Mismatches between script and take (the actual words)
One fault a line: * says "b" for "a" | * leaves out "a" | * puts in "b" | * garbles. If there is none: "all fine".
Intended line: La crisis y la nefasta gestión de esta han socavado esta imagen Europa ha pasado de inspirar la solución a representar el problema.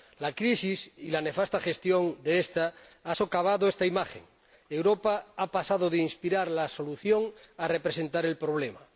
all fine